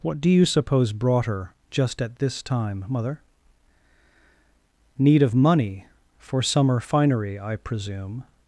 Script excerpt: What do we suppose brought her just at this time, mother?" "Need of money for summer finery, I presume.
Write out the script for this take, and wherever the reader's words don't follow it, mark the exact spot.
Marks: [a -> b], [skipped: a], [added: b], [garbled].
What do [we -> you] suppose brought her just at this time, mother?" "Need of money for summer finery, I presume.